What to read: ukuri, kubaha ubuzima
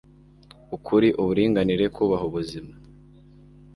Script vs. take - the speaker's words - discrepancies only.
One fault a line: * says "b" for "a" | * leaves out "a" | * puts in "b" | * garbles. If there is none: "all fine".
* puts in "uburinganire"